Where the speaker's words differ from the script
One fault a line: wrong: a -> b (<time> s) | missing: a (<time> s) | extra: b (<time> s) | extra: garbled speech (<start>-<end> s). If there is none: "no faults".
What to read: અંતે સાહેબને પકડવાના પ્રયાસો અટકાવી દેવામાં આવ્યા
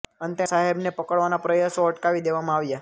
no faults